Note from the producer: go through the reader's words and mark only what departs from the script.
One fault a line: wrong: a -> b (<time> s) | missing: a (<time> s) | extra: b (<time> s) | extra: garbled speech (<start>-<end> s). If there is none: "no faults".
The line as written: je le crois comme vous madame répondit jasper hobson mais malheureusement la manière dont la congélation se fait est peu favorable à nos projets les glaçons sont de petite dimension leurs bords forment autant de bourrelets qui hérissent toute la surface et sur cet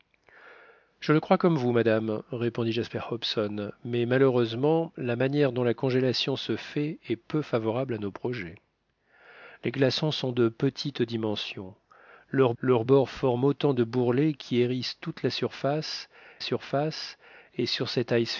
extra: leurs (12.6 s)
extra: surface (16.4 s)